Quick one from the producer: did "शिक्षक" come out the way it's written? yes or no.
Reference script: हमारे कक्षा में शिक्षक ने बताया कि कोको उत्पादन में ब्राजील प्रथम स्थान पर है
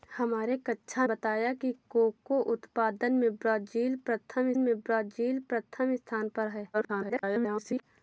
no